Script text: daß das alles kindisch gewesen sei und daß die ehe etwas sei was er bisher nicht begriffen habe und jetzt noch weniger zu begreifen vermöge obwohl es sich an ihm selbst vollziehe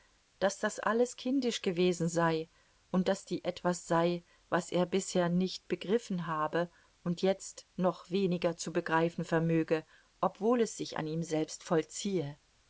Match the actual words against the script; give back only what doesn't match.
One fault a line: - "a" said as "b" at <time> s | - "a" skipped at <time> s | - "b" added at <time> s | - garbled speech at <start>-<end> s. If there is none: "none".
- "ehe" skipped at 3.5 s